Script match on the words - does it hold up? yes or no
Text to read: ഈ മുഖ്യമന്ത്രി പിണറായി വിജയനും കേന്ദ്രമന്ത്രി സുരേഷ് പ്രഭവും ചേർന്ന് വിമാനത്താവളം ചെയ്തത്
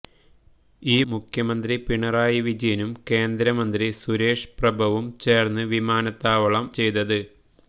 yes